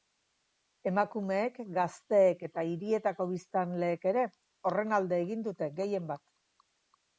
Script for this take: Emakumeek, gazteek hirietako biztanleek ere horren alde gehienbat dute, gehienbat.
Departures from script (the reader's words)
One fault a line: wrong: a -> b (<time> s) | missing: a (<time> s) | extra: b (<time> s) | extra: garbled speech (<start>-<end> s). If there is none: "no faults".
extra: eta (2.5 s)
wrong: gehienbat -> egin (5.3 s)